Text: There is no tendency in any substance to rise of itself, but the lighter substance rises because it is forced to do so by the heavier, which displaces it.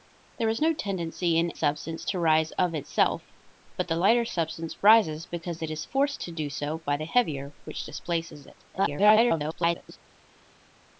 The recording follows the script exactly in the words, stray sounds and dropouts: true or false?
false